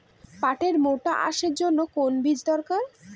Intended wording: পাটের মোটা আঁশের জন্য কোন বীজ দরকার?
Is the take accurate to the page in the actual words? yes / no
yes